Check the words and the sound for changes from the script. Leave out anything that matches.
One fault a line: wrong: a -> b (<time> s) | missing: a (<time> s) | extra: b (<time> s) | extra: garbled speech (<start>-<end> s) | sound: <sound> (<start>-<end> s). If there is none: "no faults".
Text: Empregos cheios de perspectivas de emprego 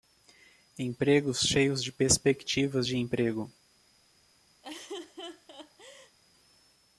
sound: laugh (4.6-6.2 s)